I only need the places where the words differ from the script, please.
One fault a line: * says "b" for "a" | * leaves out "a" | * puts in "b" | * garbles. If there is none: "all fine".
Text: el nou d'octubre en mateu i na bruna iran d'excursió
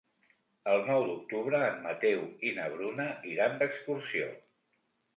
all fine